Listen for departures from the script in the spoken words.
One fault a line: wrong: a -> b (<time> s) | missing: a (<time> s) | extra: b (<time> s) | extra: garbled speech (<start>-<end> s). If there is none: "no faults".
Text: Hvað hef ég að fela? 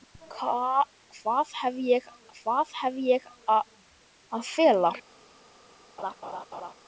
extra: hvað hef ég (2.4 s)